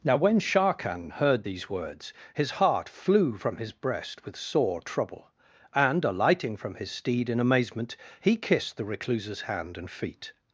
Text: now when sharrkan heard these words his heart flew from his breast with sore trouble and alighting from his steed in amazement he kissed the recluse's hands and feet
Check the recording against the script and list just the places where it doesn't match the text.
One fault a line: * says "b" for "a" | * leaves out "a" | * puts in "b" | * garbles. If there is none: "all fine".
* says "hand" for "hands"